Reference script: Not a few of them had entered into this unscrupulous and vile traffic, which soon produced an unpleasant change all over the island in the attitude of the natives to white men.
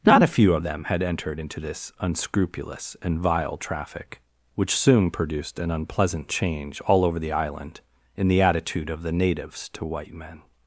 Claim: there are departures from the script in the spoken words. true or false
false